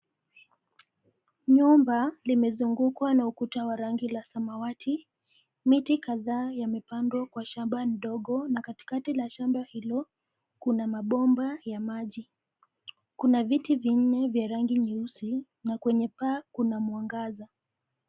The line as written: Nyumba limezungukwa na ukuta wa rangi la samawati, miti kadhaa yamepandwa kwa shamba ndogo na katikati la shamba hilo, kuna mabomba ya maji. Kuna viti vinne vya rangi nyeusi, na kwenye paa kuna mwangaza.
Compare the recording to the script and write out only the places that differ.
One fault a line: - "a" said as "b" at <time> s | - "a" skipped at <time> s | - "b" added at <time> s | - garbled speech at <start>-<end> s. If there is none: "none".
none